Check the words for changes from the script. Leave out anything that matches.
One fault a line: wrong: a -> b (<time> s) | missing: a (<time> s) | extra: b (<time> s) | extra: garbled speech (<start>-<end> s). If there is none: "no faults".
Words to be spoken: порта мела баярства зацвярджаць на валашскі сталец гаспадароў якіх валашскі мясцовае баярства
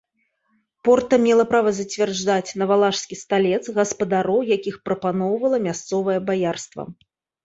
wrong: баярства -> права (1.5 s)
wrong: валашскі -> прапаноўвала (4.9 s)